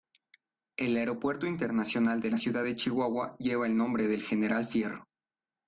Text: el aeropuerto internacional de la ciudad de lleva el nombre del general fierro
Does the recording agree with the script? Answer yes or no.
no